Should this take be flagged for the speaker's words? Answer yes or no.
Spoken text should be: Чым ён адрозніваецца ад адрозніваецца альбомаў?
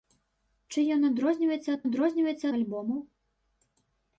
no